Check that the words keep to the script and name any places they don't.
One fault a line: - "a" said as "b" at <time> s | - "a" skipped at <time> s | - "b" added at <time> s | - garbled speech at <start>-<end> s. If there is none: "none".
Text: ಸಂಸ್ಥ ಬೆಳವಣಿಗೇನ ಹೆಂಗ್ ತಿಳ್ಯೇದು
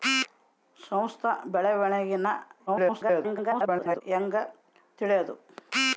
- garbled speech at 2.7-4.0 s